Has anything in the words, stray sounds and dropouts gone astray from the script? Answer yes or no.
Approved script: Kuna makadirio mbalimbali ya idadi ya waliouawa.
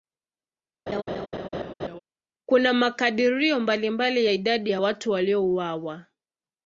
yes